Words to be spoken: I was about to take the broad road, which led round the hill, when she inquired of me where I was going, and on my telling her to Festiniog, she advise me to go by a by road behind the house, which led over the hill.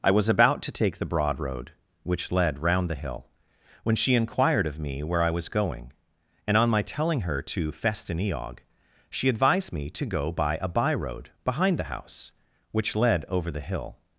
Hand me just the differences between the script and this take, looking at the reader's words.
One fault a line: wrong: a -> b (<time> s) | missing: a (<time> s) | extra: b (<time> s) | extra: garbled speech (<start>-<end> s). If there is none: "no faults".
wrong: advise -> advised (9.3 s)